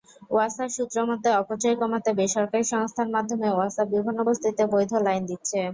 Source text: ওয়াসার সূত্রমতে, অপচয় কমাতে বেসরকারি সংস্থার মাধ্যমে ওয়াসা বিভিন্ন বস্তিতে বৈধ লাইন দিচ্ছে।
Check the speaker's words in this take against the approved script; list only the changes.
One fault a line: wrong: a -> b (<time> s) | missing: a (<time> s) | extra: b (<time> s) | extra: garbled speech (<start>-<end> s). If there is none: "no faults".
no faults